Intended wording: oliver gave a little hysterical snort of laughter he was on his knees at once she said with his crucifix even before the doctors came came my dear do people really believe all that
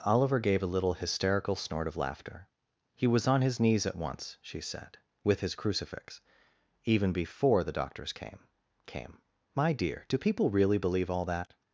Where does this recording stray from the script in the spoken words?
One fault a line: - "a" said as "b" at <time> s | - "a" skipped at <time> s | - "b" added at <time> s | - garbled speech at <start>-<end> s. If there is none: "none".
none